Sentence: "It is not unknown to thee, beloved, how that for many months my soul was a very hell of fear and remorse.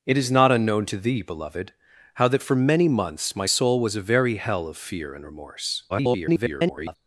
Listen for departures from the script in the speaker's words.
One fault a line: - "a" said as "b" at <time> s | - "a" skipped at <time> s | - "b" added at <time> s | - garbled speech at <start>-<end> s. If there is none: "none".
- garbled speech at 5.9-7.0 s